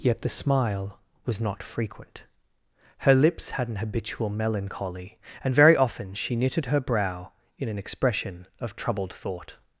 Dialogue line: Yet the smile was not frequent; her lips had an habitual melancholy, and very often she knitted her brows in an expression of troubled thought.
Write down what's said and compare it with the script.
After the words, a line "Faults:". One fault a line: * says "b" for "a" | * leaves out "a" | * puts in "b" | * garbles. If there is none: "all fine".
Yet the smile was not frequent; her lips had an habitual melancholy, and very often she knitted her brow in an expression of troubled thought.
Faults:
* says "brow" for "brows"